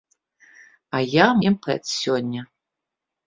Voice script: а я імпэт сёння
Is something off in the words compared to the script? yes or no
no